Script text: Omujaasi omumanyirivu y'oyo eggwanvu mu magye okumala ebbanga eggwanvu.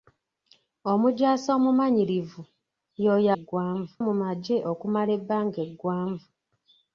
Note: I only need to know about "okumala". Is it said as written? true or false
true